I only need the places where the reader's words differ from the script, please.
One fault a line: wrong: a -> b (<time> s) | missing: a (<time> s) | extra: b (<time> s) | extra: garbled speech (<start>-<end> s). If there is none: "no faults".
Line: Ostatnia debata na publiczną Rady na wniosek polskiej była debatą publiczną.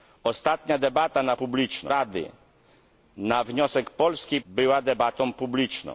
no faults